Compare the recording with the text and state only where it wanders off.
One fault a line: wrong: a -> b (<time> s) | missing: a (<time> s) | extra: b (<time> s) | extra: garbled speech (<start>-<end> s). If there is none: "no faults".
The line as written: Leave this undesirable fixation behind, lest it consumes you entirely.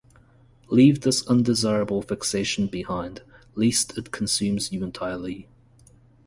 no faults